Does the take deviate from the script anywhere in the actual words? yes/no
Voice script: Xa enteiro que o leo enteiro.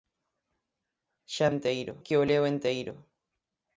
no